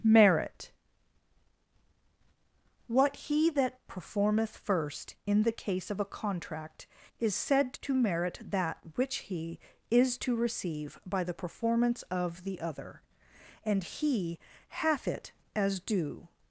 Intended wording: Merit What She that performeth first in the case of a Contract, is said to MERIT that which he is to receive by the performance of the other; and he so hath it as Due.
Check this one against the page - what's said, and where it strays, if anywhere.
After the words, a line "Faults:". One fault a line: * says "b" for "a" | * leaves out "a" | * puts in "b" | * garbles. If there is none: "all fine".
Merit What He that performeth first in the case of a Contract, is said to MERIT that which he is to receive by the performance of the other; and he hath it as Due.
Faults:
* says "He" for "She"
* leaves out "so"